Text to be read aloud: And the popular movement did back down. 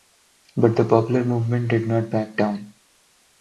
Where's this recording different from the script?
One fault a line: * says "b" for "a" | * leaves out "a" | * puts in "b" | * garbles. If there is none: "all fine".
* says "But" for "And"
* puts in "not"